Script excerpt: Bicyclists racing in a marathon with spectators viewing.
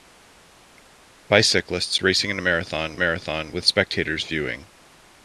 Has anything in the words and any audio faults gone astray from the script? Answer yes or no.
yes